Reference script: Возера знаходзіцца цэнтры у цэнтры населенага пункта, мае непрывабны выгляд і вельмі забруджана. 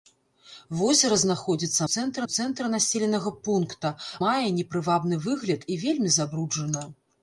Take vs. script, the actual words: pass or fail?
pass